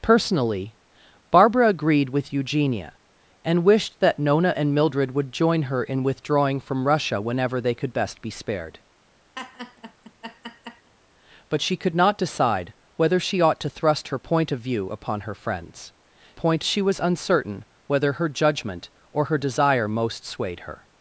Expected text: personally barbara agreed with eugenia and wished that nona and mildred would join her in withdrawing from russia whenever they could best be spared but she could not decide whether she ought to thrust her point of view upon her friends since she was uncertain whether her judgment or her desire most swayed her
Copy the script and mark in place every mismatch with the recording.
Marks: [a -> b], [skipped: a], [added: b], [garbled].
personally barbara agreed with eugenia and wished that nona and mildred would join her in withdrawing from russia whenever they could best be spared but she could not decide whether she ought to thrust her point of view upon her friends [since -> point] she was uncertain whether her judgment or her desire most swayed her